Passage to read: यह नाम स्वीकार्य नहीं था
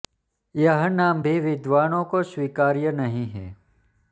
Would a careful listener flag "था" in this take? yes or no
yes